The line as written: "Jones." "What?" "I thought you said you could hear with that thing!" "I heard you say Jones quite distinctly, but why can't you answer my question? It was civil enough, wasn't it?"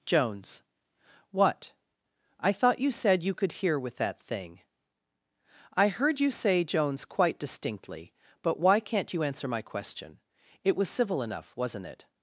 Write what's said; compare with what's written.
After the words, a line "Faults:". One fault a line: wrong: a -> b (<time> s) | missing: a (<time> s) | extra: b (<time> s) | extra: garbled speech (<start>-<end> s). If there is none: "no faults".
"Jones." "What?" "I thought you said you could hear with that thing!" "I heard you say Jones quite distinctly, but why can't you answer my question? It was civil enough, wasn't it?"
Faults:
no faults